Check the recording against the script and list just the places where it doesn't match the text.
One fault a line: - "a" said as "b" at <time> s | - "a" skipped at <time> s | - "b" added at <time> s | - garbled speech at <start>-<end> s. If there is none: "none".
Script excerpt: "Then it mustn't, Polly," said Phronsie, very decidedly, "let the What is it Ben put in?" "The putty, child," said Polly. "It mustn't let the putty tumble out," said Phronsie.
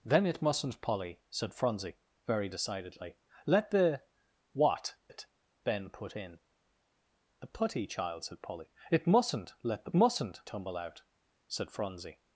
- "is" skipped at 5.0 s
- "putty" said as "mustn't" at 9.9 s